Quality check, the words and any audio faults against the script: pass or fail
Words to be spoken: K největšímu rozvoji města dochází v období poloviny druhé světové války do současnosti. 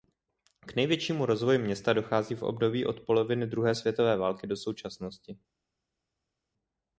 fail